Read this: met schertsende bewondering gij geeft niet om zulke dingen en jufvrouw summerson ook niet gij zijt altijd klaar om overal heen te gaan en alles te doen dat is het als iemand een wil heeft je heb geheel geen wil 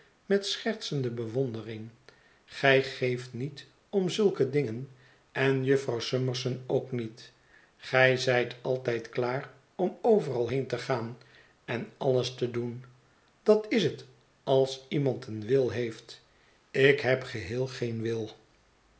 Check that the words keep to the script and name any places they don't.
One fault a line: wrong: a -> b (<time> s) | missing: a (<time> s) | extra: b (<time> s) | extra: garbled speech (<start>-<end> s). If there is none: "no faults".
wrong: je -> ik (16.7 s)